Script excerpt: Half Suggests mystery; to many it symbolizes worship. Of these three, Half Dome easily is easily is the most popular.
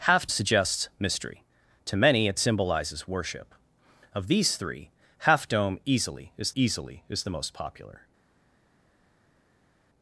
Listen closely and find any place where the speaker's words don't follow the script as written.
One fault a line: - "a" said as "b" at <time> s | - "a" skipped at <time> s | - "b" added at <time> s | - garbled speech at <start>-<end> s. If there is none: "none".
none